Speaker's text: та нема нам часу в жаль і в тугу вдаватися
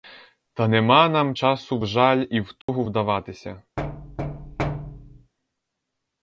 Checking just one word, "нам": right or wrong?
right